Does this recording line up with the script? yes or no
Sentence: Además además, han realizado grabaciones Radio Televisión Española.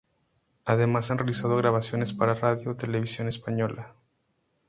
no